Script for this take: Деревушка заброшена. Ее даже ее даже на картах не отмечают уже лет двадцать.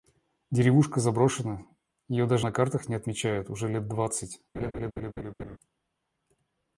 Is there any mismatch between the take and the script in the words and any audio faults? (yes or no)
yes